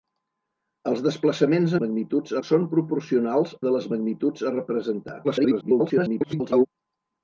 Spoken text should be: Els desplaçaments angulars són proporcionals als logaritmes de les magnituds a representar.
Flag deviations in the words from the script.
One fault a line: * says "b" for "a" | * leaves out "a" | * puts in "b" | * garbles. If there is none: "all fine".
* says "magnituds" for "angulars"
* leaves out "als logaritmes"
* garbles